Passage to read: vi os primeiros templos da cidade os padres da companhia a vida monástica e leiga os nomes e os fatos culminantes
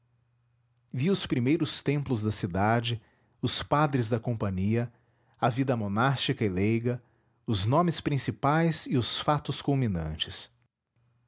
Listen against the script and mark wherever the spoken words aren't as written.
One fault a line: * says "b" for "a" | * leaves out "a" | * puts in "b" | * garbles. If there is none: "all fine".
* puts in "principais"